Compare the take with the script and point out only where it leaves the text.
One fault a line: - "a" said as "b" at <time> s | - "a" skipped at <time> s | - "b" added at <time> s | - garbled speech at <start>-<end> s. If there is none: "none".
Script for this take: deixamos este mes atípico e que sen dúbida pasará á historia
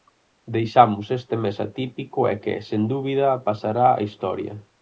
none